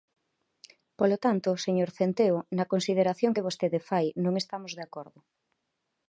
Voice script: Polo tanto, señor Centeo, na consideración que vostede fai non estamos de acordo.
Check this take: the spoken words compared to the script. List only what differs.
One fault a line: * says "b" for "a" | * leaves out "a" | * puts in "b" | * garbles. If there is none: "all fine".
all fine